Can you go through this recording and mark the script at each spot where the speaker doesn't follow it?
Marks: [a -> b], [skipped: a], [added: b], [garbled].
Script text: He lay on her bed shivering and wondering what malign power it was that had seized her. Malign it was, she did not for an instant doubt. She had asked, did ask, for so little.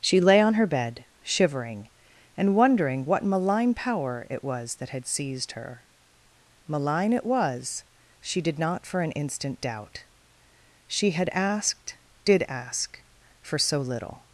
[He -> She] lay on her bed shivering and wondering what malign power it was that had seized her. Malign it was, she did not for an instant doubt. She had asked, did ask, for so little.